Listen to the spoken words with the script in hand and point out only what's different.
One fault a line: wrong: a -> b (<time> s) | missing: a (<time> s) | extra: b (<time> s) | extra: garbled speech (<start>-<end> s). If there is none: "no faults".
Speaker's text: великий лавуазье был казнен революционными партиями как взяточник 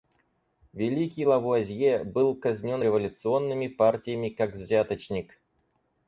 no faults